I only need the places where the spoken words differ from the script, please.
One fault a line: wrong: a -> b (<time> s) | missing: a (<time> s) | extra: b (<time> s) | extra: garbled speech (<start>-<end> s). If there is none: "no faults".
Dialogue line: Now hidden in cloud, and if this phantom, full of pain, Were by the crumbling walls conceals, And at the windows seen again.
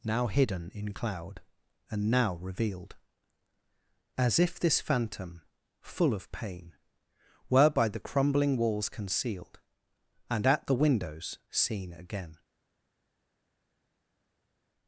extra: now revealed As (2.1 s)
wrong: conceals -> concealed (8.9 s)